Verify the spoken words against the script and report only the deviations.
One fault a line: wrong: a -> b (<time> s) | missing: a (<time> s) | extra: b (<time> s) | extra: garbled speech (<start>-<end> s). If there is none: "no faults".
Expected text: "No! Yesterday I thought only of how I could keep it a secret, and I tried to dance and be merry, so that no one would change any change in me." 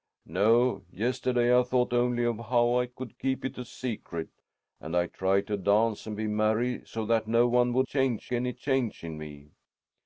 no faults